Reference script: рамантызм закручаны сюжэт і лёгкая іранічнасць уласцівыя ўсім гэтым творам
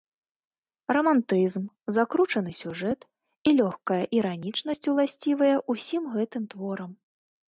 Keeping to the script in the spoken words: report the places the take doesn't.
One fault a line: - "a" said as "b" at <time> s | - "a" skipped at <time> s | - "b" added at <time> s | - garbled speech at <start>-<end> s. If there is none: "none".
none